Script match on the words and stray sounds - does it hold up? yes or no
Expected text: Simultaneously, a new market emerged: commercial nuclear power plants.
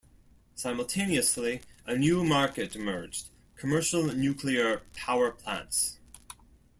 yes